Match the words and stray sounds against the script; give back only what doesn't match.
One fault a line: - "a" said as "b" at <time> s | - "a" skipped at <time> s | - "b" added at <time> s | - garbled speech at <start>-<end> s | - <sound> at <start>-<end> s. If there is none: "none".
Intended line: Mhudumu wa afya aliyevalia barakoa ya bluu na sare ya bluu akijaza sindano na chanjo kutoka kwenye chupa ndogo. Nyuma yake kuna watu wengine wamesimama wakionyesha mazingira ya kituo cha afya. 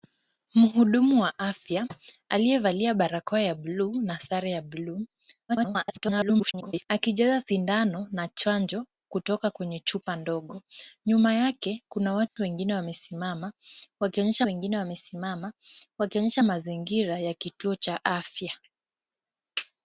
- garbled speech at 5.5-6.8 s
- dropout at 12.3-12.4 s
- "wengine wamesimama wakionyesha" added at 14.5 s